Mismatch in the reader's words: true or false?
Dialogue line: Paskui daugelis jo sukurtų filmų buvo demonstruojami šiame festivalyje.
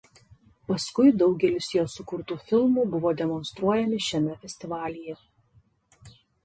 false